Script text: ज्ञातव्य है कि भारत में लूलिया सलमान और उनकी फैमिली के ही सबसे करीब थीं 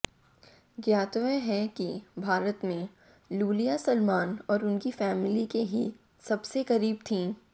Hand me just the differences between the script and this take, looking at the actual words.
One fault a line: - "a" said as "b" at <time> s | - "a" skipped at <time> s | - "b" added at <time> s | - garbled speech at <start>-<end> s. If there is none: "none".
none